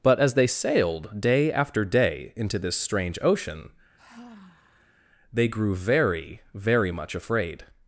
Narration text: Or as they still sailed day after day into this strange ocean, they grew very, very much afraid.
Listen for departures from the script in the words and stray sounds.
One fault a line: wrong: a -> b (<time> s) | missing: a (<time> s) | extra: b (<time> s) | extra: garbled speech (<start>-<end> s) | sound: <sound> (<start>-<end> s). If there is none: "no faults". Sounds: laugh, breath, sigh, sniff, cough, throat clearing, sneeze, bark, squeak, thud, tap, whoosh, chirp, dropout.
wrong: Or -> But (0.0 s)
missing: still (0.5 s)
sound: sigh (4.0-5.1 s)